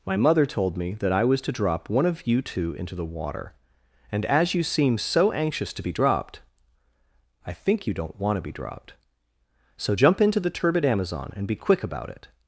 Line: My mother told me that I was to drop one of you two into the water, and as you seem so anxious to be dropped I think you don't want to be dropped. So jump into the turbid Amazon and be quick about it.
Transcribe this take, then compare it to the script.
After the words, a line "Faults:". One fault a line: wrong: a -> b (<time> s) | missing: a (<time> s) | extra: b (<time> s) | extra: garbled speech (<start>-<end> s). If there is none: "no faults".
My mother told me that I was to drop one of you two into the water, and as you seem so anxious to be dropped I think you don't want to be dropped. So jump into the turbid Amazon and be quick about it.
Faults:
no faults